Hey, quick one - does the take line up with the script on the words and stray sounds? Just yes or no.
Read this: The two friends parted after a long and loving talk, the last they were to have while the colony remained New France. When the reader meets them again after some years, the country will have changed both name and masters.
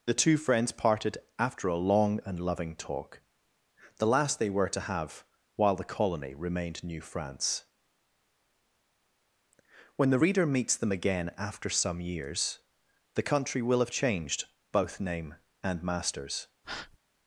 no